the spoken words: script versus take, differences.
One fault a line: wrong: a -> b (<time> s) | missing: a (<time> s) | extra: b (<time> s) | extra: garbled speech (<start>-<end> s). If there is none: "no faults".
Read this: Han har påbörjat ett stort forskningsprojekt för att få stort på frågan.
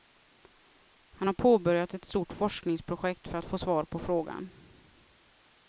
wrong: stort -> svar (3.6 s)